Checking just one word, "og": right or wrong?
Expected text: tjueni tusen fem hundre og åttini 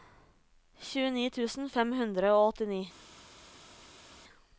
right